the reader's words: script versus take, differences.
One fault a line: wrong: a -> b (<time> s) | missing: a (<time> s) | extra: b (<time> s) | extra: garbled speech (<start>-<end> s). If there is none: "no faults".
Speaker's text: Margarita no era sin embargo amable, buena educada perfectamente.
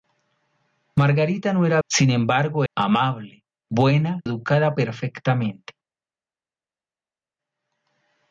no faults